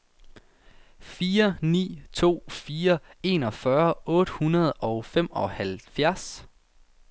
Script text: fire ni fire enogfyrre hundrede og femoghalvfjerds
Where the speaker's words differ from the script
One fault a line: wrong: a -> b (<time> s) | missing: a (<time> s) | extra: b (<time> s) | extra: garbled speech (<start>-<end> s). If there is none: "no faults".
extra: to (2.1 s)
extra: otte (4.1 s)